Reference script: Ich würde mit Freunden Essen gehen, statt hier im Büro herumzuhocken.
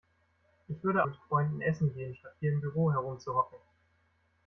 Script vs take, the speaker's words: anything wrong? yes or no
no